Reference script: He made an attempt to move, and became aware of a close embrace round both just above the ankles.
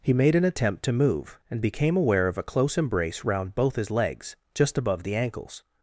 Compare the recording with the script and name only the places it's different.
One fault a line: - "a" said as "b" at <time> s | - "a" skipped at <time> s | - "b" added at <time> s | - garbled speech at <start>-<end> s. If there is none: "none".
- "his legs" added at 3.8 s